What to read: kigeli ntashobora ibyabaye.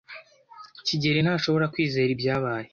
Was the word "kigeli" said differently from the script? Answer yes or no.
no